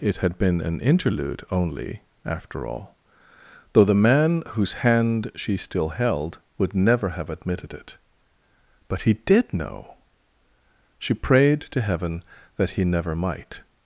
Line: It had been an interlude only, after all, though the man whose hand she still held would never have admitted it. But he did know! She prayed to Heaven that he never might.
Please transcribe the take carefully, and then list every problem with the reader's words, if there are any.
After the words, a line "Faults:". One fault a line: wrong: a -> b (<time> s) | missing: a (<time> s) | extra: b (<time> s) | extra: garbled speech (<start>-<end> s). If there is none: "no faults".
It had been an interlude only, after all, though the man whose hand she still held would never have admitted it. But he did know! She prayed to Heaven that he never might.
Faults:
no faults